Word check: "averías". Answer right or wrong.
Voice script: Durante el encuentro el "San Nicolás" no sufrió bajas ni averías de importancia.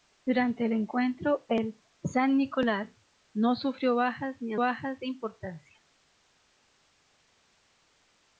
wrong